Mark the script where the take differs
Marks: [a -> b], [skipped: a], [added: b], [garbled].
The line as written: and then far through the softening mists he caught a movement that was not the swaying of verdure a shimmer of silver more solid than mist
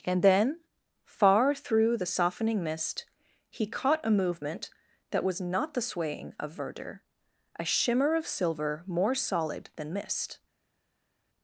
and then far through the softening [mists -> mist] he caught a movement that was not the swaying of verdure a shimmer of silver more solid than mist